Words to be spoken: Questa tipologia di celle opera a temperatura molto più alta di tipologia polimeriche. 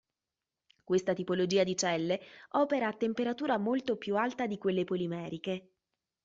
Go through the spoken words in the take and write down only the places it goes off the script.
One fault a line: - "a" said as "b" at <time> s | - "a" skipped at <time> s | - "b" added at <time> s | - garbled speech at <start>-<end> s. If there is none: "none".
- "tipologia" said as "quelle" at 4.6 s